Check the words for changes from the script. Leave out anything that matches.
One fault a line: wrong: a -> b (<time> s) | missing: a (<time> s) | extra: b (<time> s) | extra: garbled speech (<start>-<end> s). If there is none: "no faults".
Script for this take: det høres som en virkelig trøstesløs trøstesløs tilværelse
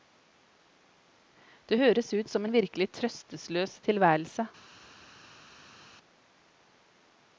extra: ut (2.1 s)
missing: trøstesløs (3.8 s)